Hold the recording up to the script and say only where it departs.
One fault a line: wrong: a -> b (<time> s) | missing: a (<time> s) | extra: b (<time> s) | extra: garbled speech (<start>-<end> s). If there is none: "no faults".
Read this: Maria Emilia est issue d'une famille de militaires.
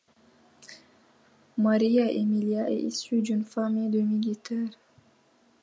no faults